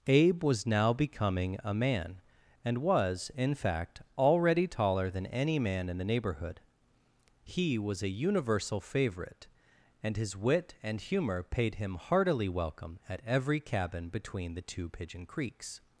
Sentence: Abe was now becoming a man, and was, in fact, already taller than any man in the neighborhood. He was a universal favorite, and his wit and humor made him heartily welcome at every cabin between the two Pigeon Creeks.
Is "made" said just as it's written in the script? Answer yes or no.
no